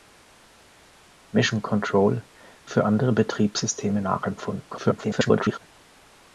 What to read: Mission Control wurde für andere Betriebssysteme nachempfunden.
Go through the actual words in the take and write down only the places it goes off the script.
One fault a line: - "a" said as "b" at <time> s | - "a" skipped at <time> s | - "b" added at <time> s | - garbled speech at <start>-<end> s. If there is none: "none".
- "wurde" skipped at 2.2 s
- garbled speech at 4.7-5.6 s